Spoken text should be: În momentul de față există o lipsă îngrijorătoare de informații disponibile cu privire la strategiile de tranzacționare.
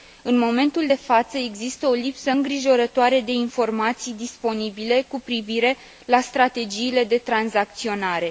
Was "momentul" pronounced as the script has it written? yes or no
yes